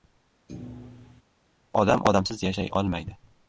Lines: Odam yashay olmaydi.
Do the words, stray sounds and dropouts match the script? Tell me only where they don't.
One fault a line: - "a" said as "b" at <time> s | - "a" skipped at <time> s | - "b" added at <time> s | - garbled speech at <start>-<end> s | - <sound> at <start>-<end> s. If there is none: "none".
- thud at 0.5-1.2 s
- "odamsiz" added at 2.1 s